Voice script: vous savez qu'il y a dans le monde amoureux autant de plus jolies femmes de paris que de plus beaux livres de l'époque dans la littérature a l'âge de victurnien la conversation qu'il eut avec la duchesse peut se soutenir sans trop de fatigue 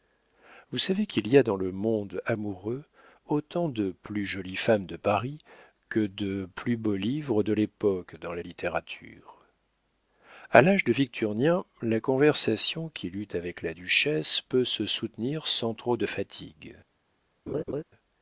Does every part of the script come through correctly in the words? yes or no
yes